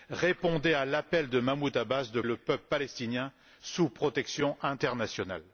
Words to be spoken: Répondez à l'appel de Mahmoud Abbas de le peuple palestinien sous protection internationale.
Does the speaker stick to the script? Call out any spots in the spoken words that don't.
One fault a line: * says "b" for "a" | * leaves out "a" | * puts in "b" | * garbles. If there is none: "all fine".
all fine